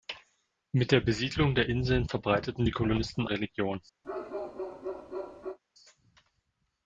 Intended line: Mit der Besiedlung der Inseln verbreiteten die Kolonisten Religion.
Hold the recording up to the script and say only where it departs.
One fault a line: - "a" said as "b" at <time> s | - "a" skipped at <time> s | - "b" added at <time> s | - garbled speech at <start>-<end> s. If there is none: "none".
none